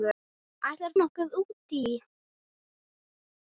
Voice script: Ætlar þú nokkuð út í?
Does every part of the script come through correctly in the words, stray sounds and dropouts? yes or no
no